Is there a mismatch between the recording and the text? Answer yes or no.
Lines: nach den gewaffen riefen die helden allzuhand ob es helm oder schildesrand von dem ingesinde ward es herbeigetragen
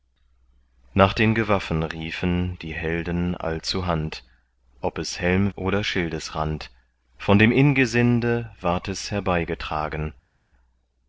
no